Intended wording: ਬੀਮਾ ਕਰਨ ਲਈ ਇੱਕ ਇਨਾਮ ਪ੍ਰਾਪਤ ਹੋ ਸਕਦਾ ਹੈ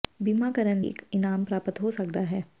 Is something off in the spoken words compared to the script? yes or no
yes